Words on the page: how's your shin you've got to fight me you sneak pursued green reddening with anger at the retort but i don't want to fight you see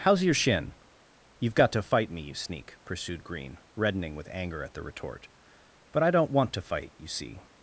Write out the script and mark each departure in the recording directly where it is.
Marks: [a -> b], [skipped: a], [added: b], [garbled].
how's your shin you've got to fight me you sneak pursued green reddening with anger at the retort but i don't want to fight you see